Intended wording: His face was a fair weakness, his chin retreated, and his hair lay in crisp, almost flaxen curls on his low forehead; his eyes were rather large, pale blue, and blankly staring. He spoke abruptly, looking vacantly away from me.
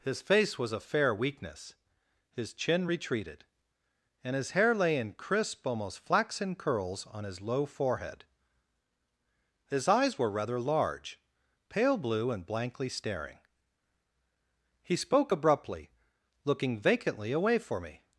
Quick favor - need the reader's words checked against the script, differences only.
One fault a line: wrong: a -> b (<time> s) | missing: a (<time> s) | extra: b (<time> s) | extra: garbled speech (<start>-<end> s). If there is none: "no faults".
wrong: from -> for (17.6 s)